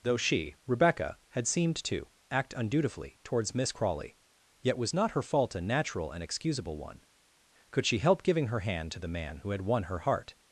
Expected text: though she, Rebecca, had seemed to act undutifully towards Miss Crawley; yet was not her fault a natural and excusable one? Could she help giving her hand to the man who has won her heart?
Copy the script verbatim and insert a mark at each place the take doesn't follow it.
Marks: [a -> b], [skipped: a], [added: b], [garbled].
though she, Rebecca, had seemed to act undutifully towards Miss Crawley; yet was not her fault a natural and excusable one? Could she help giving her hand to the man who [has -> had] won her heart?